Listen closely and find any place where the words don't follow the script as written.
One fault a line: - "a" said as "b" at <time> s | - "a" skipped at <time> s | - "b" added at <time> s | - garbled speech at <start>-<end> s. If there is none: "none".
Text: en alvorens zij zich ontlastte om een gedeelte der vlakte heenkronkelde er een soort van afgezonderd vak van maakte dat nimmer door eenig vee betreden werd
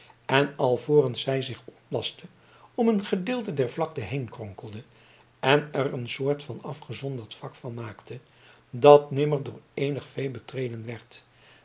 - "en" added at 5.4 s